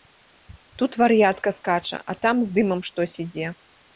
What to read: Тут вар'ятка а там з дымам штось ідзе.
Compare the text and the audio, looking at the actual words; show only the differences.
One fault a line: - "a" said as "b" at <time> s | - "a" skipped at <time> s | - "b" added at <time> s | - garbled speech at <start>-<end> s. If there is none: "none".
- "скача" added at 1.6 s